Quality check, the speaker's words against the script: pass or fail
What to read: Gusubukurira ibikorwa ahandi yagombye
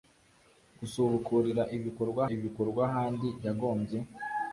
fail